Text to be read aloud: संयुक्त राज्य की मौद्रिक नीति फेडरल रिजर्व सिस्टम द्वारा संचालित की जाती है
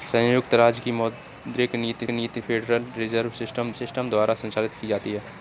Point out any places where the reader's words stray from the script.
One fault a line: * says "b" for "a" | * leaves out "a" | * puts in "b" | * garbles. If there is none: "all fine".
* puts in "नीति"
* puts in "सिस्टम"